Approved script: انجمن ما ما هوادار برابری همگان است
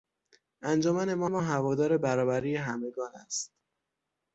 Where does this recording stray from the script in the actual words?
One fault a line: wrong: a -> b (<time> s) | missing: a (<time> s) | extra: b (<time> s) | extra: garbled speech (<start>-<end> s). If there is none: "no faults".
no faults